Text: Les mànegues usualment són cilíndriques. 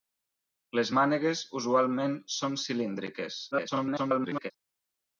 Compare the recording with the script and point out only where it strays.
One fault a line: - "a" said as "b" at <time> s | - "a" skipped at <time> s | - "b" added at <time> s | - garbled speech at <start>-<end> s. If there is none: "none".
- garbled speech at 3.5-4.5 s